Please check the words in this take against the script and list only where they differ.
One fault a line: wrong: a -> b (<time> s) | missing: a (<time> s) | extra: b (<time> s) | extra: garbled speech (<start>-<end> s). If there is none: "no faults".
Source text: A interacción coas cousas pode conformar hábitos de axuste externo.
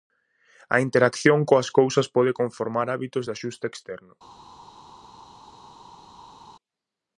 no faults